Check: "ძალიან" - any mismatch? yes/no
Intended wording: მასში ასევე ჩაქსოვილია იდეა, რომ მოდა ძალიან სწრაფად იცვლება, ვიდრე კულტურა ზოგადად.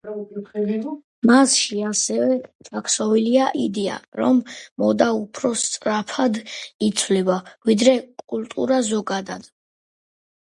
yes